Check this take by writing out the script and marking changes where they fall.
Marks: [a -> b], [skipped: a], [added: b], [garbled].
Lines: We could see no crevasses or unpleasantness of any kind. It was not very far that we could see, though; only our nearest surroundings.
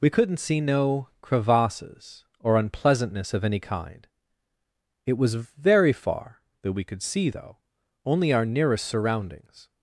We [could -> couldn't] see no crevasses or unpleasantness of any kind. It was [skipped: not] very far that we could see, though; only our nearest surroundings.